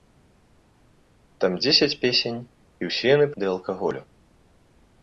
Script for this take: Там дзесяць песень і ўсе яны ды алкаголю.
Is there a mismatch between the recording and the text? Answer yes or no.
no